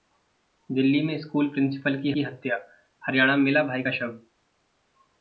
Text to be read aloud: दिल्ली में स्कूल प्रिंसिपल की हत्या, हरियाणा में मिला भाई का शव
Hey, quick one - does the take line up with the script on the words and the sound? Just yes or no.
no